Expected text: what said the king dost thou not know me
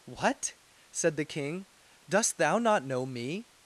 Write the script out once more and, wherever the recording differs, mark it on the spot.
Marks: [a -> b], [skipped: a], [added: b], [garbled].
what said the king dost thou not know me